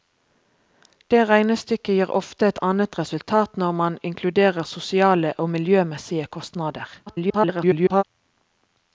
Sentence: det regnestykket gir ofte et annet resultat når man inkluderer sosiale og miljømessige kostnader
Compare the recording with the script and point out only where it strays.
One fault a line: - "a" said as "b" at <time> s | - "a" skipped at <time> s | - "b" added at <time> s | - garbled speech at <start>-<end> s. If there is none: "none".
- garbled speech at 7.1-8.0 s